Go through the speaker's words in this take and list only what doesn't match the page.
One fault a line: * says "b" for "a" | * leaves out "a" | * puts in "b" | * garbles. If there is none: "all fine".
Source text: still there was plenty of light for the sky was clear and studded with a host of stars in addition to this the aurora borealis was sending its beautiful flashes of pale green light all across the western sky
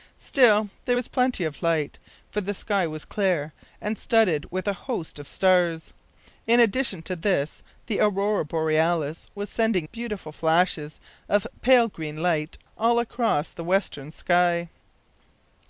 * leaves out "its"